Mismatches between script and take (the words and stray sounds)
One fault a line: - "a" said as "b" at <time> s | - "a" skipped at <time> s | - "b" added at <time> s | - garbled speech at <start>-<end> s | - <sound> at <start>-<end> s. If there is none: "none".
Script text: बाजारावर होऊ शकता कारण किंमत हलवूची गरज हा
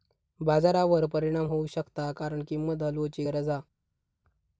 - "परिणाम" added at 1.1 s